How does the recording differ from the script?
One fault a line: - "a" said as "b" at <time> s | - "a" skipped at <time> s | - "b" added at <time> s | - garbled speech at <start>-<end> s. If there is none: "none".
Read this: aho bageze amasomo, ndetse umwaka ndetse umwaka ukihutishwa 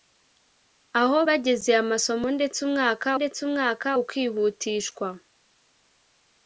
none